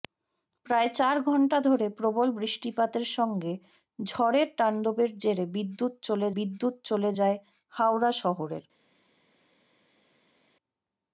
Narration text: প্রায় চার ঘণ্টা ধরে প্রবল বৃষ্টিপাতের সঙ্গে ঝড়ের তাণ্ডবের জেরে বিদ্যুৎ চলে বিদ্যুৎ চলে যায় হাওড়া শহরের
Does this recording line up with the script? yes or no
yes